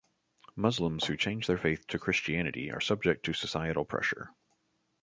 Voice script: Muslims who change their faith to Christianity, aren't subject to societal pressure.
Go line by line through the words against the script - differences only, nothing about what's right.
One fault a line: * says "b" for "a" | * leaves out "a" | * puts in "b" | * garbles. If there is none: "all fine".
* says "are" for "aren't"